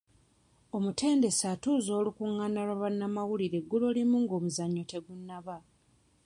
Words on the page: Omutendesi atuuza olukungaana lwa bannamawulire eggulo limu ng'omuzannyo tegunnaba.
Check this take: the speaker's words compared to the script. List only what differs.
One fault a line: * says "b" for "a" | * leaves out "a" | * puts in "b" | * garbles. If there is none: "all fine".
all fine